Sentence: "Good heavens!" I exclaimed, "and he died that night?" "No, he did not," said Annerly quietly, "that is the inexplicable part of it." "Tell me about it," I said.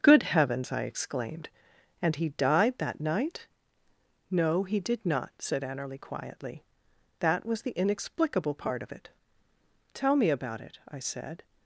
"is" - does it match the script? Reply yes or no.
no